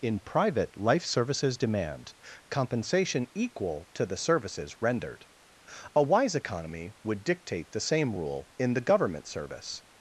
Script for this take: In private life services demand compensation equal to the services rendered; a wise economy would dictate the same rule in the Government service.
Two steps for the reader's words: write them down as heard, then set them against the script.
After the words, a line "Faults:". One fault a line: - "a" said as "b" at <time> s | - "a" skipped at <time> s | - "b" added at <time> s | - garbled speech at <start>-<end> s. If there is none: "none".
In private life services demand compensation equal to the services rendered; a wise economy would dictate the same rule in the Government service.
Faults:
none